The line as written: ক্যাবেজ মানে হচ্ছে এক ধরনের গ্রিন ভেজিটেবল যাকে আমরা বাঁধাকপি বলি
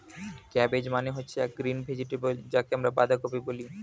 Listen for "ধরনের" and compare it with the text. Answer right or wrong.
wrong